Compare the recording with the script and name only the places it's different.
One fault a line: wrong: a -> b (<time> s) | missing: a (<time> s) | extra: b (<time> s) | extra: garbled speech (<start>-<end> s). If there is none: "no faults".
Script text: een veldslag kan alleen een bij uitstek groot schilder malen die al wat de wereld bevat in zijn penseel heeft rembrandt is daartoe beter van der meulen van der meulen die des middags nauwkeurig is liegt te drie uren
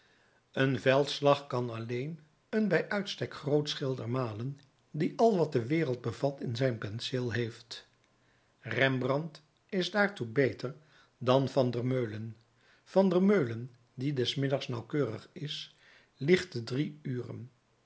extra: dan (11.2 s)